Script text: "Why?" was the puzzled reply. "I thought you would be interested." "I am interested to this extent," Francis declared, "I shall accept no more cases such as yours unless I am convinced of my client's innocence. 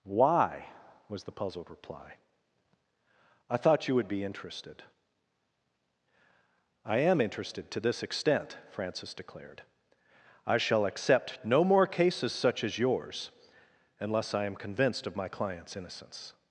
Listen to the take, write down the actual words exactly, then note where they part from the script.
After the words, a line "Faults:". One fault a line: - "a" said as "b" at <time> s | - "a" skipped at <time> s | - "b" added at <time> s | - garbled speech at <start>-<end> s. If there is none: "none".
"Why?" was the puzzled reply. "I thought you would be interested." "I am interested to this extent," Francis declared, "I shall accept no more cases such as yours unless I am convinced of my client's innocence.
Faults:
none